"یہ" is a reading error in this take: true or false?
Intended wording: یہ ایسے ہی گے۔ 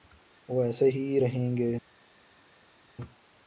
true